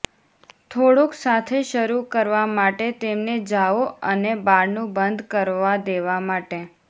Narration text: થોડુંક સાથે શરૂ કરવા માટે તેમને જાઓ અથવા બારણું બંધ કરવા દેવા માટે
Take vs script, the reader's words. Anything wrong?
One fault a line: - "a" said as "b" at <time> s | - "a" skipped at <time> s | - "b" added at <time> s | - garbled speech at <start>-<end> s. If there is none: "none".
- "અથવા" said as "અને" at 4.1 s